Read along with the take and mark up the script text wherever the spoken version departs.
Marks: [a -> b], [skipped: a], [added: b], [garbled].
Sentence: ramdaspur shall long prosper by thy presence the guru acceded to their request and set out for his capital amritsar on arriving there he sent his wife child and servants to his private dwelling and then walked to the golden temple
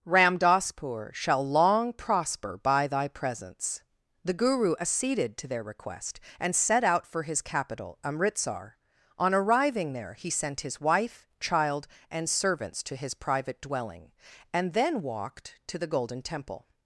ramdaspur shall long prosper by thy presence the guru acceded to their request and set out for his capital amritsar on arriving there he sent his wife child and servants to his private dwelling and then walked to the golden temple